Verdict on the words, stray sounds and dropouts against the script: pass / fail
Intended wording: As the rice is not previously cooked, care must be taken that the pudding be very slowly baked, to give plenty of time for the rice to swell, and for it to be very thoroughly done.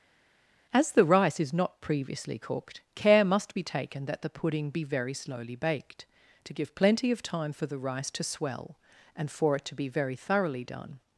pass